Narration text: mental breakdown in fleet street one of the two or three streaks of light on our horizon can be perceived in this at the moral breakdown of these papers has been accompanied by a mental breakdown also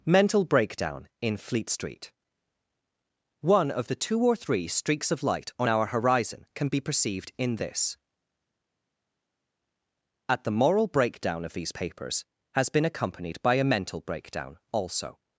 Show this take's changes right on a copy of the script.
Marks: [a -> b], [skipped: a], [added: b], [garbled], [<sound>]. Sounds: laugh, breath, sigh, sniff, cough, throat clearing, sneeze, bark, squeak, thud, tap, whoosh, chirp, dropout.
mental breakdown in fleet street one of the two or three streaks of light on our horizon can be perceived in this at the moral breakdown of these papers has been accompanied by a mental breakdown also